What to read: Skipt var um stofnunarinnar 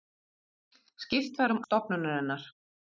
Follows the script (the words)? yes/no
yes